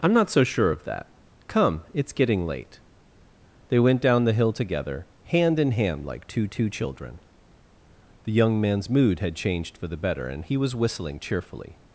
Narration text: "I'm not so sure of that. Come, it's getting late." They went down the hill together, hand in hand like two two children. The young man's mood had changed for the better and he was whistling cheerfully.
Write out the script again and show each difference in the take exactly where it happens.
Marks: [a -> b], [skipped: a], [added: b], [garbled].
"I'm not so sure of that. Come, it's getting late." They went down the hill together, hand in hand like two two children. The young man's mood had changed for the better and he was whistling cheerfully.